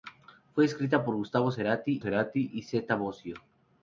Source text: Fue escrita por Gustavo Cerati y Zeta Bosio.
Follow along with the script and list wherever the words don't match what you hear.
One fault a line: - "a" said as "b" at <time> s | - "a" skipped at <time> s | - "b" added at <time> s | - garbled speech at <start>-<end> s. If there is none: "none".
- "Cerati" added at 2.0 s